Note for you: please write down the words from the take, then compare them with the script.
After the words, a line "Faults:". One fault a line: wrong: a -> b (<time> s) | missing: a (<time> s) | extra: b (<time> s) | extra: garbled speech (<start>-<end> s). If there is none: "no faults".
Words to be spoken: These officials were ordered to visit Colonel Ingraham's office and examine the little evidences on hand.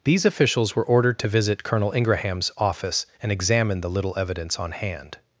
These officials were ordered to visit Colonel Ingraham's office and examine the little evidence on hand.
Faults:
wrong: evidences -> evidence (4.2 s)